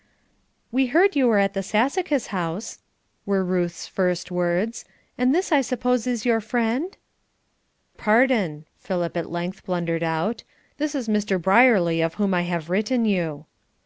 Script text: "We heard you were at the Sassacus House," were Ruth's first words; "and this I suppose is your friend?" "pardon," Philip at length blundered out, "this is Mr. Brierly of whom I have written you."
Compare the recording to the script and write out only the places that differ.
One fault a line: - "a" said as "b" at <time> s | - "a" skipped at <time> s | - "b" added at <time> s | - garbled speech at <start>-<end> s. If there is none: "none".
none